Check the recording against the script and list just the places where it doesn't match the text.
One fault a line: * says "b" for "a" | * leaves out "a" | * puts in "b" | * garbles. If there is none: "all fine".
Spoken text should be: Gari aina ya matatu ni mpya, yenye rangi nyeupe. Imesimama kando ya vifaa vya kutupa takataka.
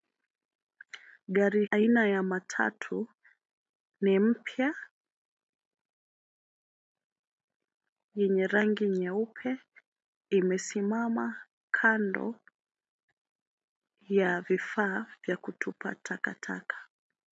all fine